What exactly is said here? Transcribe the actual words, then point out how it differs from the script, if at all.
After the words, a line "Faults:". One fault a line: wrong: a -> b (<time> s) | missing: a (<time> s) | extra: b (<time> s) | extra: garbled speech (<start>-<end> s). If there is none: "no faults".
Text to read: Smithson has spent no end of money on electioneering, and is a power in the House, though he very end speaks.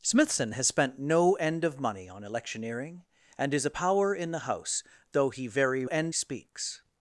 Smithson has spent no end of money on electioneering, and is a power in the House, though he very end speaks.
Faults:
no faults